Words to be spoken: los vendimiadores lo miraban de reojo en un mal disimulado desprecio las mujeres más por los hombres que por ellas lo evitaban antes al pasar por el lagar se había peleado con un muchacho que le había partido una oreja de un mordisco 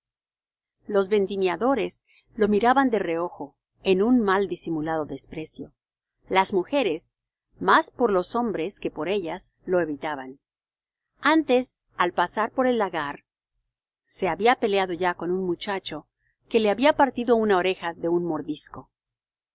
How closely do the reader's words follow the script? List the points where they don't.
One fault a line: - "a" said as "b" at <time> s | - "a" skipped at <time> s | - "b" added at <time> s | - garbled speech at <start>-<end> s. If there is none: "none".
- "ya" added at 14.9 s